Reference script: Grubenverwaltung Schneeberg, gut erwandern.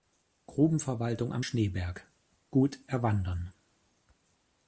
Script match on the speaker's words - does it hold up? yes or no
no